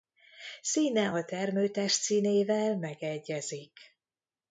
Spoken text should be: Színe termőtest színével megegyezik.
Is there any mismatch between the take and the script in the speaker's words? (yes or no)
yes